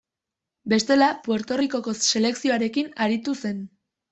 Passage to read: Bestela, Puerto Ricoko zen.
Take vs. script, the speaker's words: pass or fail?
fail